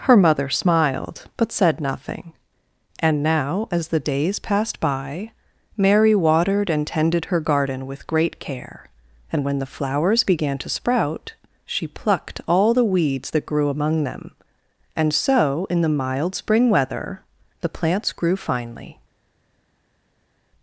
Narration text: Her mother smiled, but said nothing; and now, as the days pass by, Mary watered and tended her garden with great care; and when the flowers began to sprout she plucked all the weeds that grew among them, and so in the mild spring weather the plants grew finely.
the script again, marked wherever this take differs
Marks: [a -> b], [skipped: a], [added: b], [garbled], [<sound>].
Her mother smiled, but said nothing; and now, as the days [pass -> passed] by, Mary watered and tended her garden with great care; and when the flowers began to sprout she plucked all the weeds that grew among them, and so in the mild spring weather the plants grew finely.